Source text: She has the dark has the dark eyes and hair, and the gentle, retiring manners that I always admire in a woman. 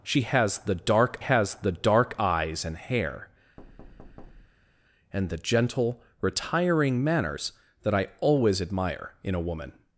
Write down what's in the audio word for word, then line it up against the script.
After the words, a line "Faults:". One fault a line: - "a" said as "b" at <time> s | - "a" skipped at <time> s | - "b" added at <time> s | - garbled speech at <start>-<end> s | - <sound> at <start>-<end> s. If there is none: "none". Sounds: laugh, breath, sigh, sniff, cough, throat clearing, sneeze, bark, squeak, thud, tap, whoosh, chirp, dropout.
She has the dark has the dark eyes and hair, and the gentle, retiring manners that I always admire in a woman.
Faults:
- thud at 3.6-4.8 s